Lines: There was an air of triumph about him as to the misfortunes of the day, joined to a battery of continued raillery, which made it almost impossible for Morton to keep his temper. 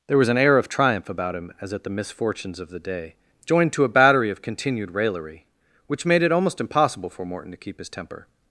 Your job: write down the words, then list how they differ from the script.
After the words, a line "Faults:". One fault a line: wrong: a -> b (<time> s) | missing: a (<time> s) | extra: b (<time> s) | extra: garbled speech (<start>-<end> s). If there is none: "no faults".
There was an air of triumph about him as at the misfortunes of the day, joined to a battery of continued raillery, which made it almost impossible for Morton to keep his temper.
Faults:
wrong: to -> at (1.7 s)